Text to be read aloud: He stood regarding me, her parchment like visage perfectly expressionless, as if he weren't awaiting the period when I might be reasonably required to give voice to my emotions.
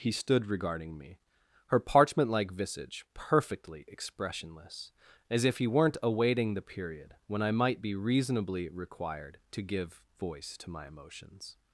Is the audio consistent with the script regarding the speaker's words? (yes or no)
yes